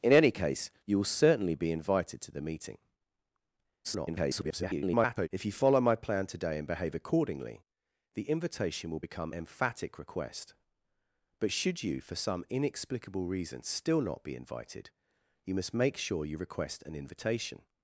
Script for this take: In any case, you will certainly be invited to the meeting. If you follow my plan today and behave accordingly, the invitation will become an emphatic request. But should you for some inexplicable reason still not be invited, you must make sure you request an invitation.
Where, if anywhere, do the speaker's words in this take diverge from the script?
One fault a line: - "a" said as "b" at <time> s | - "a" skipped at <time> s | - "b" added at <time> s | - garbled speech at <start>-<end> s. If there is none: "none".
- garbled speech at 3.8-5.3 s
- "an" skipped at 9.3 s